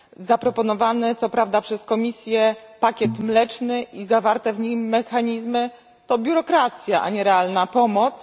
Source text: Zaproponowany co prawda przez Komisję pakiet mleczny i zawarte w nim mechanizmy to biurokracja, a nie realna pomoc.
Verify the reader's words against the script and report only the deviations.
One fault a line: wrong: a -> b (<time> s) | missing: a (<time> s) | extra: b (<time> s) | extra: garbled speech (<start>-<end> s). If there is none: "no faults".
no faults